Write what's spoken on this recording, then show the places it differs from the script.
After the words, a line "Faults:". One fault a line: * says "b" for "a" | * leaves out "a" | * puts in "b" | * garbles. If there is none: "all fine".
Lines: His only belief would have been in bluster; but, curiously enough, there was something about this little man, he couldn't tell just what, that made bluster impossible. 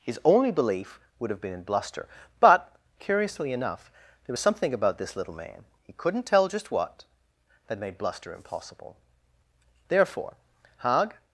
His only belief would have been in bluster; but, curiously enough, there was something about this little man, he couldn't tell just what, that made bluster impossible. Therefore, Hag
Faults:
* puts in "Therefore Hag"